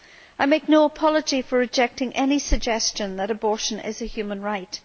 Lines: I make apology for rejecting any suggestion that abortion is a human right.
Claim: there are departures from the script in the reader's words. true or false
true